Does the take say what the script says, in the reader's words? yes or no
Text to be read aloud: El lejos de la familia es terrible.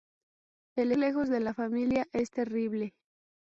yes